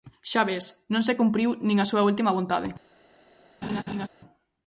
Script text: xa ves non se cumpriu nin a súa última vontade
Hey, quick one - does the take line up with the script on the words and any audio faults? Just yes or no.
no